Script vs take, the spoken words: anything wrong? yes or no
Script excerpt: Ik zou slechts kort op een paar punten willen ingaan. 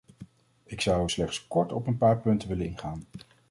no